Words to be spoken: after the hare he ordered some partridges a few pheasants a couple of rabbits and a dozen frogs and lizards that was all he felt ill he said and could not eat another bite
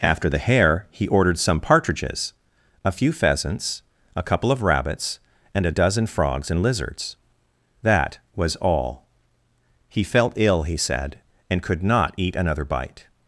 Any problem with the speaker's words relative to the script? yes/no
no